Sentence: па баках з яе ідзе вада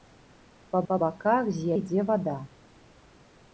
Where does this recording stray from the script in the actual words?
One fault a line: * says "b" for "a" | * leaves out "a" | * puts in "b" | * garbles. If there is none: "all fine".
* puts in "па"
* leaves out "яе"